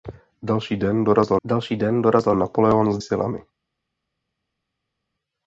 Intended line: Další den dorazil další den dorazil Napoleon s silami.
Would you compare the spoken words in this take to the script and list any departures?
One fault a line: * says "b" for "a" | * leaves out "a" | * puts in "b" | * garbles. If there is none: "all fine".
all fine